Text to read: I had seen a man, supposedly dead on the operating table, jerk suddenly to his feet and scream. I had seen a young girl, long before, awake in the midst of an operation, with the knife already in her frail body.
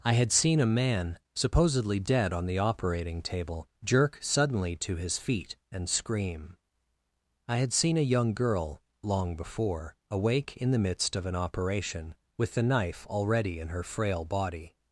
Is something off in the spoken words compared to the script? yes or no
no